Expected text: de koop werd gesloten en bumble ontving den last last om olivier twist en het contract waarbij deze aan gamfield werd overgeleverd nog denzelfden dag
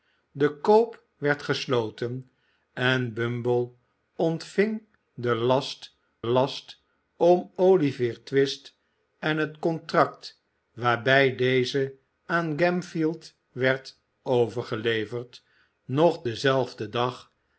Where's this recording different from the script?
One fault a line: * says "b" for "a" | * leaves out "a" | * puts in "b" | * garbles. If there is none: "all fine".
all fine